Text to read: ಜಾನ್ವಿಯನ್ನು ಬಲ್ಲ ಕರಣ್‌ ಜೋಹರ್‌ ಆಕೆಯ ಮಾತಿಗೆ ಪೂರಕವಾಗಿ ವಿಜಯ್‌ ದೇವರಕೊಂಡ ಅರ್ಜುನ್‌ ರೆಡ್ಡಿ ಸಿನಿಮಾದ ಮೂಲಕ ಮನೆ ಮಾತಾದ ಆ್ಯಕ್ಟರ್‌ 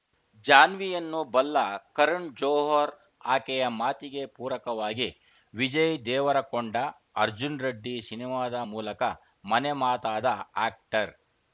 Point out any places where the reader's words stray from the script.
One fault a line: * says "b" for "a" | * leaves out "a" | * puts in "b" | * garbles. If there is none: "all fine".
all fine